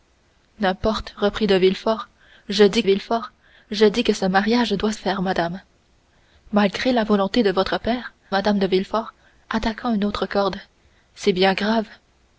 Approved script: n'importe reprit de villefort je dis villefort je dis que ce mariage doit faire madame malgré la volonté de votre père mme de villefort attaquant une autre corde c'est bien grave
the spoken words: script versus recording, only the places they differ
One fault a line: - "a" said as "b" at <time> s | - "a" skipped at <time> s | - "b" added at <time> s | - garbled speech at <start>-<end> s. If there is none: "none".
none